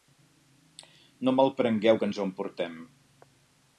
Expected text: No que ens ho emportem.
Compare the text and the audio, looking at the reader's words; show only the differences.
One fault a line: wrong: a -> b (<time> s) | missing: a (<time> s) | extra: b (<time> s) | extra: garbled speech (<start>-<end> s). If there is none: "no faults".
extra: malprengueu (1.4 s)